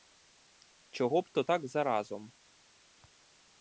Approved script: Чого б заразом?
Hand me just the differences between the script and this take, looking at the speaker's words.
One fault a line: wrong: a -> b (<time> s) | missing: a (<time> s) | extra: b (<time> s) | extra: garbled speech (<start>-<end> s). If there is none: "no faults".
extra: то так (1.3 s)